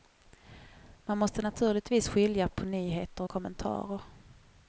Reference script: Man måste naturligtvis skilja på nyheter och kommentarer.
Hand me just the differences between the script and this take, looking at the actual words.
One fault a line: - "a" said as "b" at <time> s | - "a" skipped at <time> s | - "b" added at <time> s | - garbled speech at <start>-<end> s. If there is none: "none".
none